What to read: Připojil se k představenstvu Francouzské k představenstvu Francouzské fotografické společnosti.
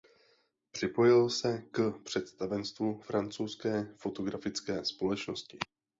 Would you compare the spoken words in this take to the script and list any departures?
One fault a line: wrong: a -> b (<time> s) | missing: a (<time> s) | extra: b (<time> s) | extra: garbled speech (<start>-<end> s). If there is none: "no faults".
missing: k představenstvu Francouzské (3.9 s)